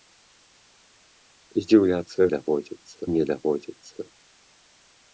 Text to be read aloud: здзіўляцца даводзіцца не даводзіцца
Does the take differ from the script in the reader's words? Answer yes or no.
no